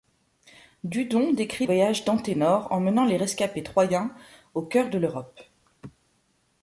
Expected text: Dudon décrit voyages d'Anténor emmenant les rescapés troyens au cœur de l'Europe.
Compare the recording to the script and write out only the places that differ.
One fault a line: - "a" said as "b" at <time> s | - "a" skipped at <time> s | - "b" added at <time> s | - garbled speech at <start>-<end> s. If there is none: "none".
none